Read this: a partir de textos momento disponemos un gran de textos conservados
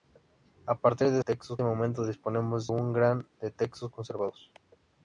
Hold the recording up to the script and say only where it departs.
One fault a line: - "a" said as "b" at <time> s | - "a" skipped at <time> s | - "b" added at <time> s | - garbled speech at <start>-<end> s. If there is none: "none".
none